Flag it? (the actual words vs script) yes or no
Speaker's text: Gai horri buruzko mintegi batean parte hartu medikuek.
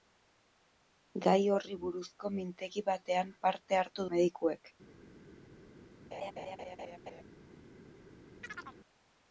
no